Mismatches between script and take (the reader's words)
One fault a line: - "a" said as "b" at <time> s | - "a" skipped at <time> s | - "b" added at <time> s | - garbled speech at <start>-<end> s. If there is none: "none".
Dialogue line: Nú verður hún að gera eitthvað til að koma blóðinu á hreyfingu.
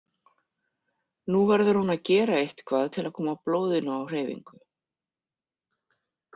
none